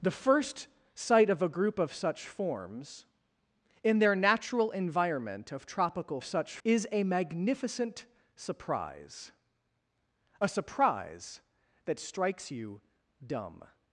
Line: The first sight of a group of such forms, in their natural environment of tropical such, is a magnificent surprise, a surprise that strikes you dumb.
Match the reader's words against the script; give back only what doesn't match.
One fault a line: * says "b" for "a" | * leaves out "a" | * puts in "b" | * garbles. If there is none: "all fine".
all fine